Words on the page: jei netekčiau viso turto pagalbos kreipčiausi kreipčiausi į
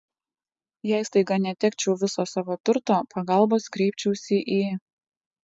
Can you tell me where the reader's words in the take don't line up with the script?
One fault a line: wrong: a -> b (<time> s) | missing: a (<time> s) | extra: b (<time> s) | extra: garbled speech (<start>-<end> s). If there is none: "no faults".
extra: staiga (1.1 s)
extra: savo (2.3 s)
missing: kreipčiausi (4.4 s)